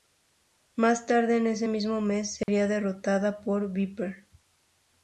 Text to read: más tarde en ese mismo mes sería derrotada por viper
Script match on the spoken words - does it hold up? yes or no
yes